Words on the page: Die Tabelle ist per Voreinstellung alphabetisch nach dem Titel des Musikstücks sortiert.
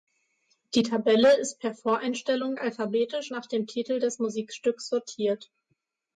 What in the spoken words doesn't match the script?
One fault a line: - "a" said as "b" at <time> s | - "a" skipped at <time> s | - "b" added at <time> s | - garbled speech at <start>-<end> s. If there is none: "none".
none